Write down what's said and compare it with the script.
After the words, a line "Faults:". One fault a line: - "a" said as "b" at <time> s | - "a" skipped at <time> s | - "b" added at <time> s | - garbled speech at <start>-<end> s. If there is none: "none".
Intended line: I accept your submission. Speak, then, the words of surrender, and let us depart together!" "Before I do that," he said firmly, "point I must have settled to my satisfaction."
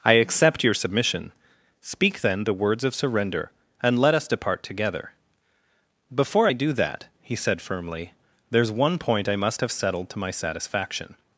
I accept your submission. Speak, then, the words of surrender, and let us depart together!" "Before I do that," he said firmly, "there's one point I must have settled to my satisfaction."
Faults:
- "there's one" added at 8.5 s